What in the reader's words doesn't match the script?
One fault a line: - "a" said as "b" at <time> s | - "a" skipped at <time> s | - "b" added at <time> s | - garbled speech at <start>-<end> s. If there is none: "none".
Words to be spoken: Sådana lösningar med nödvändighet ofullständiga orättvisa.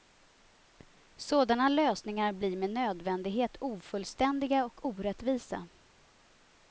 - "blir" added at 2.3 s
- "och" added at 4.7 s